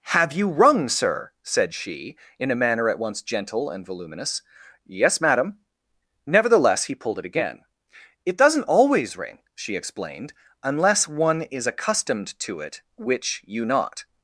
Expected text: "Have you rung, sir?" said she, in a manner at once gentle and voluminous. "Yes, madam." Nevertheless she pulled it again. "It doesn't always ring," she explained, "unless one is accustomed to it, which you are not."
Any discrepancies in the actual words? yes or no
yes